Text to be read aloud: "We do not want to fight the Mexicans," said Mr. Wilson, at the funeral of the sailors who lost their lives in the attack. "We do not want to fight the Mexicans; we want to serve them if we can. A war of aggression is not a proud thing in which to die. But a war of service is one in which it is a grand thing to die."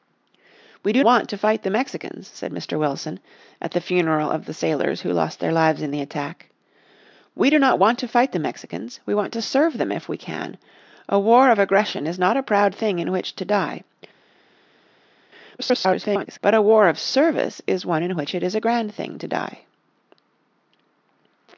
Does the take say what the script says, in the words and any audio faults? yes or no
no